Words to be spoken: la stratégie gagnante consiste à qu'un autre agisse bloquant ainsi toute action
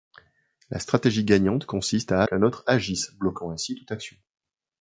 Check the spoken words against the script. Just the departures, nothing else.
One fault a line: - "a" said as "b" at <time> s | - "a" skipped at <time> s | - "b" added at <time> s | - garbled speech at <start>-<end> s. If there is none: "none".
none